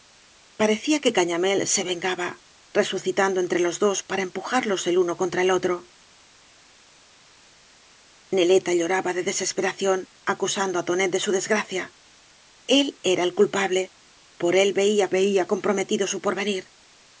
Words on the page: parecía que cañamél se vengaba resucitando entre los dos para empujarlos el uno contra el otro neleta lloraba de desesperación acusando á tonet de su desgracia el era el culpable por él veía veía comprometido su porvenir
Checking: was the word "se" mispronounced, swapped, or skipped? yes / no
no